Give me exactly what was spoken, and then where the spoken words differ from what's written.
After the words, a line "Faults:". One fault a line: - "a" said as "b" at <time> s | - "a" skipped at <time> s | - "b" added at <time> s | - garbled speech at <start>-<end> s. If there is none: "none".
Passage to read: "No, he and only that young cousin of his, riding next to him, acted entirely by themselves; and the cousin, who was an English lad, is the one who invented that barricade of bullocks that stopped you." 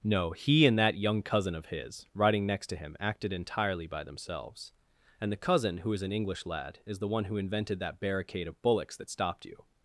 "No, he and that young cousin of his, riding next to him, acted entirely by themselves; and the cousin, who is an English lad, is the one who invented that barricade of bullocks that stopped you."
Faults:
- "only" skipped at 0.8 s
- "was" said as "is" at 5.9 s